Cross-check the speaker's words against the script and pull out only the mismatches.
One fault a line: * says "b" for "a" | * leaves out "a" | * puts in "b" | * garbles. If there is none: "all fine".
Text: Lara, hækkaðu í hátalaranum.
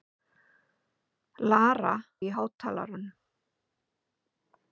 * leaves out "hækkaðu"